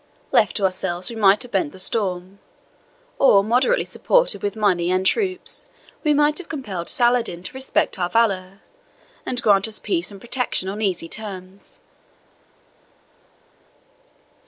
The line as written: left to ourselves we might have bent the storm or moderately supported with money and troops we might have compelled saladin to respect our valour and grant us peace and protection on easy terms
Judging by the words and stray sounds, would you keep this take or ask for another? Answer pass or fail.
pass